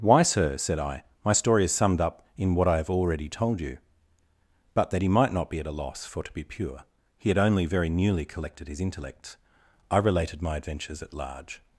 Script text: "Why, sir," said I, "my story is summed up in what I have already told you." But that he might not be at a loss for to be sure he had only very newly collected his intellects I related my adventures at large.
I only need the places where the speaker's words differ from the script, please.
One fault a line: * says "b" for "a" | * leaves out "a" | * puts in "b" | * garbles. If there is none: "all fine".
* says "pure" for "sure"